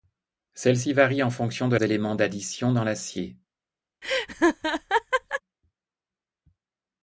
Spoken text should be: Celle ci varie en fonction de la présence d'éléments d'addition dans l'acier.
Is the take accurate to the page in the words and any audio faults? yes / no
no